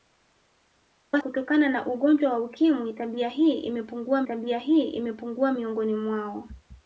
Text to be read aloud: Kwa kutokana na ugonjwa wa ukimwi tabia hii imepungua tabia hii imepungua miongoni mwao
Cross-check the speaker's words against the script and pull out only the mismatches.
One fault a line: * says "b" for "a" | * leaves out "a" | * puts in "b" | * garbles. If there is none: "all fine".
all fine